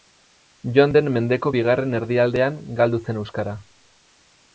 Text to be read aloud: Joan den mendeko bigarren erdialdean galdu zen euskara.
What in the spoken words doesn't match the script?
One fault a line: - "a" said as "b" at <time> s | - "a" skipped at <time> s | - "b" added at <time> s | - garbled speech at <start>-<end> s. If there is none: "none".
none